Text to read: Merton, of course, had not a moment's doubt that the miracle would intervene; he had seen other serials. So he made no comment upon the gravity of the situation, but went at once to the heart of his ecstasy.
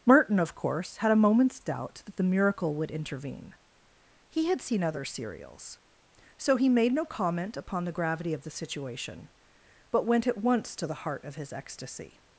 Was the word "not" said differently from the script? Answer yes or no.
yes